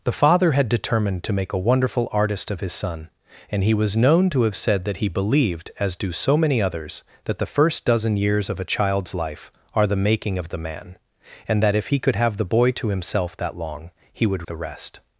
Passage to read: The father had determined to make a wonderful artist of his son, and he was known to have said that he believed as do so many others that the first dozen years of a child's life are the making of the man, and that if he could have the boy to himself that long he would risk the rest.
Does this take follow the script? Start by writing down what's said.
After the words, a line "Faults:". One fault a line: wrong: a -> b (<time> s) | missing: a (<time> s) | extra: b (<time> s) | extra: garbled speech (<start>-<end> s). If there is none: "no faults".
The father had determined to make a wonderful artist of his son, and he was known to have said that he believed as do so many others that the first dozen years of a child's life are the making of the man, and that if he could have the boy to himself that long he would the rest.
Faults:
missing: risk (14.4 s)